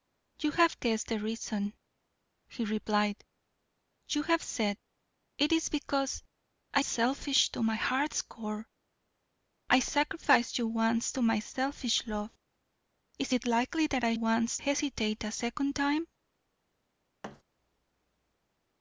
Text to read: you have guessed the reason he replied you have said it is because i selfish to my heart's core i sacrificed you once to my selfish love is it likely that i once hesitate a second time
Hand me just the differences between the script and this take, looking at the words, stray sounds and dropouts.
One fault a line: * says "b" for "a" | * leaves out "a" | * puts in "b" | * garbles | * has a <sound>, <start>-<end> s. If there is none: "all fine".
* has a thud, 17.2-17.4 s